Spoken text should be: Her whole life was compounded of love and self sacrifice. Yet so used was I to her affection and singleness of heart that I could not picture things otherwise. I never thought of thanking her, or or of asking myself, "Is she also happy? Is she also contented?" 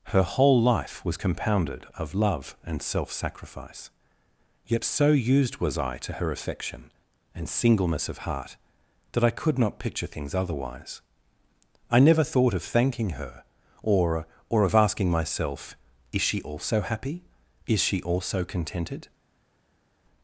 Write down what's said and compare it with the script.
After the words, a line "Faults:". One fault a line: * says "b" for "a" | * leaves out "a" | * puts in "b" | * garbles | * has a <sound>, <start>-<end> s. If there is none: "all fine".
Her whole life was compounded of love and self sacrifice. Yet so used was I to her affection and singleness of heart that I could not picture things otherwise. I never thought of thanking her, or or of asking myself, "Is she also happy? Is she also contented?"
Faults:
all fine